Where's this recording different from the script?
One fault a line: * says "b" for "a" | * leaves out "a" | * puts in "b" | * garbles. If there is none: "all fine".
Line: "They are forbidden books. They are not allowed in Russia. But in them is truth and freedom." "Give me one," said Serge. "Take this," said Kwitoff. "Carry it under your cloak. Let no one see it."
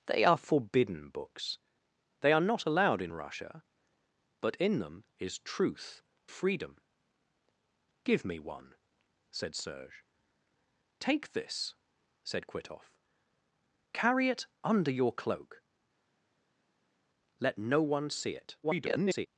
* leaves out "and"
* garbles